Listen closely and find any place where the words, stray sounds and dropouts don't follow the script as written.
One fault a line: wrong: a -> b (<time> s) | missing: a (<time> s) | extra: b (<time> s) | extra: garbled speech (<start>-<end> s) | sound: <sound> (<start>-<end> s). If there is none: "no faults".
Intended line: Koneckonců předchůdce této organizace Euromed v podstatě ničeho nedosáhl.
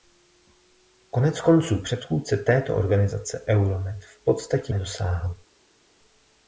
missing: ničeho (4.7 s)